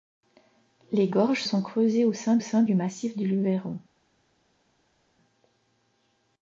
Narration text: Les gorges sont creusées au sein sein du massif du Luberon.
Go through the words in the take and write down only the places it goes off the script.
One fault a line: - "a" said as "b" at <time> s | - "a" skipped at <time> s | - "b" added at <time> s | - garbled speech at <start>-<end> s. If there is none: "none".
none